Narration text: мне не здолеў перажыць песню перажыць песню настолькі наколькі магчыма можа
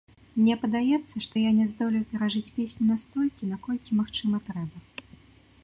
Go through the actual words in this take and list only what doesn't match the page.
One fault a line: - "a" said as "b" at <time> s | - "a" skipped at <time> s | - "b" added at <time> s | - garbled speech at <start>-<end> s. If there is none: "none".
- "падаецца што я" added at 0.6 s
- "перажыць песню" skipped at 2.8 s
- "можа" said as "трэба" at 4.5 s